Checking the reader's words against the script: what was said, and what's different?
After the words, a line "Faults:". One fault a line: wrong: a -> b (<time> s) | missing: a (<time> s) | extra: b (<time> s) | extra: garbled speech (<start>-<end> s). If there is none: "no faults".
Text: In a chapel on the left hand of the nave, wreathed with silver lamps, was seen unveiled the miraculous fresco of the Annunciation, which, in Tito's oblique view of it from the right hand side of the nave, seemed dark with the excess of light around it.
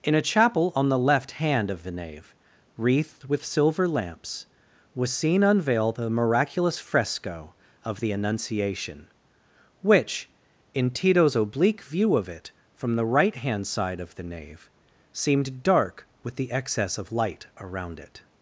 In a chapel on the left hand of the nave, wreathed with silver lamps, was seen unveiled the miraculous fresco of the Annunciation, which, in Tito's oblique view of it from the right hand side of the nave, seemed dark with the excess of light around it.
Faults:
no faults